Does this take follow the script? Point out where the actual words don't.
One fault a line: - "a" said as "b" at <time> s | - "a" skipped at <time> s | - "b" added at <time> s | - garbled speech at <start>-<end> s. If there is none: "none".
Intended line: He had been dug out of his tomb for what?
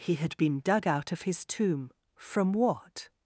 - "for" said as "from" at 2.1 s